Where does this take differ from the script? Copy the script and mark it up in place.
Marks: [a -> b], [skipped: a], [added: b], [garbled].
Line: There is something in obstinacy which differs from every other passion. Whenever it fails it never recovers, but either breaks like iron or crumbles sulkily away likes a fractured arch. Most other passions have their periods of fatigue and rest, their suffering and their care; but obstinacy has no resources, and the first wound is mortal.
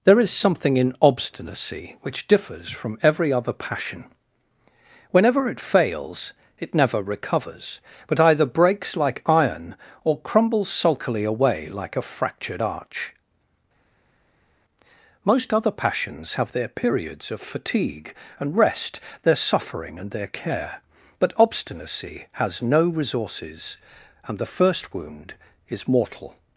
There is something in obstinacy which differs from every other passion. Whenever it fails it never recovers, but either breaks like iron or crumbles sulkily away [likes -> like] a fractured arch. Most other passions have their periods of fatigue and rest, their suffering and their care; but obstinacy has no resources, and the first wound is mortal.